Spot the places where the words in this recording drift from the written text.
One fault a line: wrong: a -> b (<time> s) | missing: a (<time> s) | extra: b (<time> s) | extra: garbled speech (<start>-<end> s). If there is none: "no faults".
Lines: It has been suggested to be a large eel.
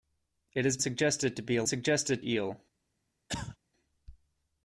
missing: been (0.8 s)
wrong: large -> suggested (1.6 s)